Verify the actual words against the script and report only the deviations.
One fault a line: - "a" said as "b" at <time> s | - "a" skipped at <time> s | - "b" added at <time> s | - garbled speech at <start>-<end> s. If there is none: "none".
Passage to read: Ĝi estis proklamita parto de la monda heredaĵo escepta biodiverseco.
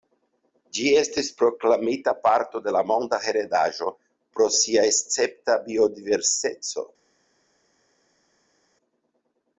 - "pro sia" added at 4.4 s